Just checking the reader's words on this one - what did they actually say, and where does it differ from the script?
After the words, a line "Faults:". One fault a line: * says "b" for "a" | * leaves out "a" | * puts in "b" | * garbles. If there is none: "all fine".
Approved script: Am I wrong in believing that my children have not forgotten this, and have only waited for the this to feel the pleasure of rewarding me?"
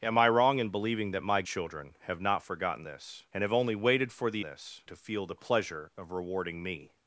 Am I wrong in believing that my children have not forgotten this, and have only waited for the this to feel the pleasure of rewarding me?"
Faults:
all fine